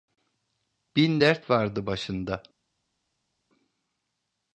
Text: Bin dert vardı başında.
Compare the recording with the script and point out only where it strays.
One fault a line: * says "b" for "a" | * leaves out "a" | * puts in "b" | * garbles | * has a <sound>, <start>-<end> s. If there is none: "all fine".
all fine